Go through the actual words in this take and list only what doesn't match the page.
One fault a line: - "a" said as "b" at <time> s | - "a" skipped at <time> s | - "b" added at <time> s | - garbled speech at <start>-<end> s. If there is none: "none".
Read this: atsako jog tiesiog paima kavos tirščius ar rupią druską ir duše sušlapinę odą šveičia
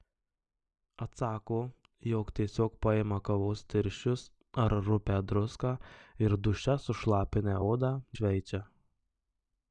none